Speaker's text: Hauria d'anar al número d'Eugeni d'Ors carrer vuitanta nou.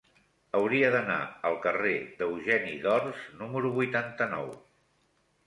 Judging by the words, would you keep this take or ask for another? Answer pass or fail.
fail